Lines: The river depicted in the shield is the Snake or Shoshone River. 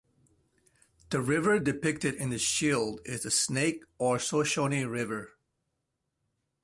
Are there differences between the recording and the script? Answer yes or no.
no